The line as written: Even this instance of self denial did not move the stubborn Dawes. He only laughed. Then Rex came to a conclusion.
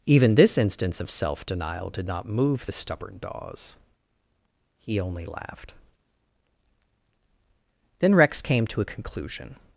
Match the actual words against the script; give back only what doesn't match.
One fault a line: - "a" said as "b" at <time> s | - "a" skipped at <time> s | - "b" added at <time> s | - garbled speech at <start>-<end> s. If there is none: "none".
none